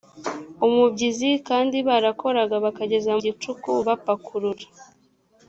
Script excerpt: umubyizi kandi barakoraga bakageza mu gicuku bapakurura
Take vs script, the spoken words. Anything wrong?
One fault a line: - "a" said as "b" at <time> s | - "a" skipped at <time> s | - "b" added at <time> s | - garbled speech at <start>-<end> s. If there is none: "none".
- "mu" skipped at 3.1 s